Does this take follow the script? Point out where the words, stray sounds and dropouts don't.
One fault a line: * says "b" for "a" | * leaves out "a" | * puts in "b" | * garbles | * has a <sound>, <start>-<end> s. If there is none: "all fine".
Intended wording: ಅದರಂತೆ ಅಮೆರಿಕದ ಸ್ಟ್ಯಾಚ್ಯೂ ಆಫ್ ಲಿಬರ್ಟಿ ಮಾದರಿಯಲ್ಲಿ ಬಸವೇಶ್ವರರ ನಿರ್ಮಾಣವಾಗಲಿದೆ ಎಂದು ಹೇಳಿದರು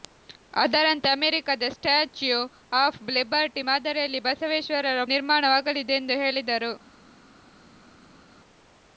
all fine